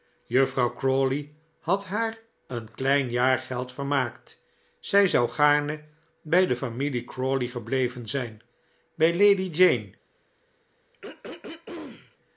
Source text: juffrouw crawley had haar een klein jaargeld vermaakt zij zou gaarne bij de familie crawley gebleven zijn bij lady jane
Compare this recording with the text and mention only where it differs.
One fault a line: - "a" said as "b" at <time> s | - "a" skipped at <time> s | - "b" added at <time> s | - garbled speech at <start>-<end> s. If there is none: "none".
none